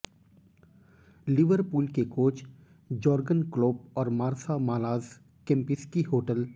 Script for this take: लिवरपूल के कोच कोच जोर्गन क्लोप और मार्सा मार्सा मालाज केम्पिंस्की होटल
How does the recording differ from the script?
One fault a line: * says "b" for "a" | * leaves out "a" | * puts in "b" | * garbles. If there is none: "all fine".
* leaves out "कोच"
* leaves out "मार्सा"